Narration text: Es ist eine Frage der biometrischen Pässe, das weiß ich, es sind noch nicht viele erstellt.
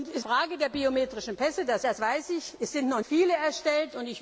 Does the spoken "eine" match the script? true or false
false